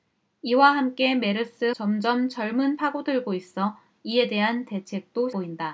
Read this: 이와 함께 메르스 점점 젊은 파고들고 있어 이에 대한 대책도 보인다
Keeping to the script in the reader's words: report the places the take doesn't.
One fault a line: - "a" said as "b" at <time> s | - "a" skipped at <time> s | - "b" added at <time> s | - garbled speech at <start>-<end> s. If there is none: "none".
none